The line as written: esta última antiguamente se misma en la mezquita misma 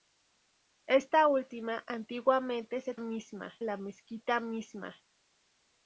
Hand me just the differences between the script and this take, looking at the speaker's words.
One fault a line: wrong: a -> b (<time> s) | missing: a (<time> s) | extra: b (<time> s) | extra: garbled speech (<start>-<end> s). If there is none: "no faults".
no faults